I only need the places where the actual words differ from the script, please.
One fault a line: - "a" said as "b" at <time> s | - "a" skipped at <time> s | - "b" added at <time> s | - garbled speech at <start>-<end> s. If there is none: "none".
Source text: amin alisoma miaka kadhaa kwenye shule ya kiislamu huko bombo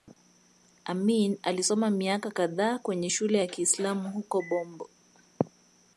none